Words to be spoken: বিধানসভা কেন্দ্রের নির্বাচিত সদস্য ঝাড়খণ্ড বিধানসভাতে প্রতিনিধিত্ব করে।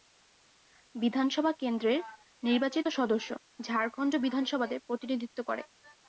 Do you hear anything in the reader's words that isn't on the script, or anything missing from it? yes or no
no